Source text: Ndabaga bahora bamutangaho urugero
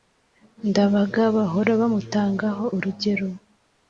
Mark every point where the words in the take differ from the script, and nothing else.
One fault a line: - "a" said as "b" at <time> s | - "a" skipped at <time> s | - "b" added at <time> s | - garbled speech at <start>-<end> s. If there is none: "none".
none